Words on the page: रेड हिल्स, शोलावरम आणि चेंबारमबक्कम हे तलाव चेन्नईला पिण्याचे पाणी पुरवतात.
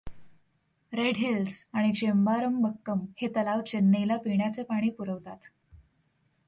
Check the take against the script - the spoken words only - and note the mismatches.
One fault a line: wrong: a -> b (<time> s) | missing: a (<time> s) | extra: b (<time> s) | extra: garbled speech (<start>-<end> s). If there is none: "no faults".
missing: शोलावरम (1.6 s)